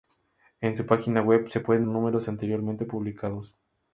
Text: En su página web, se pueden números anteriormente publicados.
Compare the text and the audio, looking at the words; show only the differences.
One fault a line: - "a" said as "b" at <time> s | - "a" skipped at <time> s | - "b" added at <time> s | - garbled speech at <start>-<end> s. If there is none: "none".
none